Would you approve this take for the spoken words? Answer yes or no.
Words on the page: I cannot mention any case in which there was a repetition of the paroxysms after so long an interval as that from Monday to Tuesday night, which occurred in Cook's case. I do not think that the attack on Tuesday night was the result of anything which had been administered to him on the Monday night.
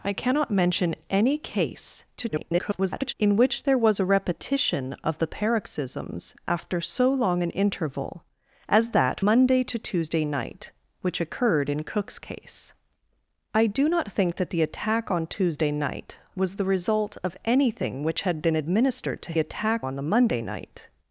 no